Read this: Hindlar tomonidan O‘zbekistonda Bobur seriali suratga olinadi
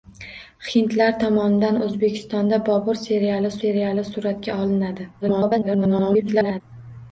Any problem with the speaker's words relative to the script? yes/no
yes